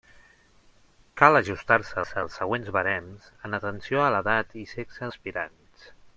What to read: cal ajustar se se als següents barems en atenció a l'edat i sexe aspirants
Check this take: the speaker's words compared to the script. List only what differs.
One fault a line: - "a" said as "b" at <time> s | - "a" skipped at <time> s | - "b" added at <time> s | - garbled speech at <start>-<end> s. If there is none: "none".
none